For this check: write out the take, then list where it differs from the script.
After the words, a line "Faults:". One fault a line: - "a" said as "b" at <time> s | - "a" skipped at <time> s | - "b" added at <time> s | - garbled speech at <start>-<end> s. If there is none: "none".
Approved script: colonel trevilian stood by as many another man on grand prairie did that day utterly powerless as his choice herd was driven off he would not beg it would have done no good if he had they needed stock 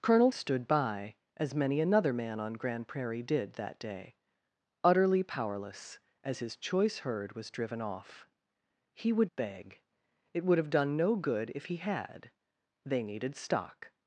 colonel stood by as many another man on grand prairie did that day utterly powerless as his choice herd was driven off he would beg it would have done no good if he had they needed stock
Faults:
- "trevilian" skipped at 0.3 s
- "not" skipped at 9.3 s